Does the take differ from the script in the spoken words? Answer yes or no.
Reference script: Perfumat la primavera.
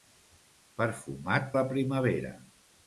no